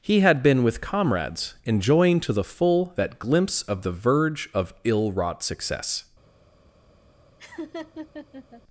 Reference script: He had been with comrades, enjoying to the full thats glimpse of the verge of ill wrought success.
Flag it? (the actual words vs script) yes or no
yes